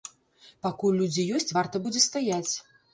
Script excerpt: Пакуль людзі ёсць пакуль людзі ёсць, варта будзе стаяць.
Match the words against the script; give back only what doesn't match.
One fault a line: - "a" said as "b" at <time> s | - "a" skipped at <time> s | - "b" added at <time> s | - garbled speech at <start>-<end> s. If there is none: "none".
- "пакуль людзі ёсць" skipped at 1.6 s